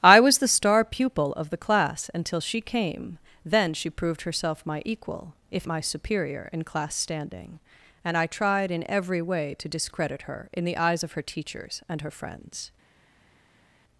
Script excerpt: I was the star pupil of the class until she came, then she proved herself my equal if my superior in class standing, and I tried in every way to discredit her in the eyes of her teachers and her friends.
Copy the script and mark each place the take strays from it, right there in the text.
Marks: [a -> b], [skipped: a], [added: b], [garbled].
I was the star pupil of the class until she came, then she proved herself my equal if my superior in class standing, and I tried in every way to discredit her in the eyes of her teachers and her friends.